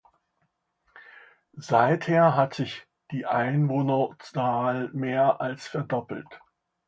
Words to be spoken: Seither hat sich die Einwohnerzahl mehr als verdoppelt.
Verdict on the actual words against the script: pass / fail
pass